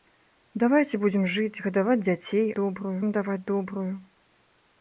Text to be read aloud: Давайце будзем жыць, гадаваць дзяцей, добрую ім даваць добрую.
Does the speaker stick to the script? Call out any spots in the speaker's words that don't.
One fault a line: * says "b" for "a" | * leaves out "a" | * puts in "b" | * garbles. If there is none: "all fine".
all fine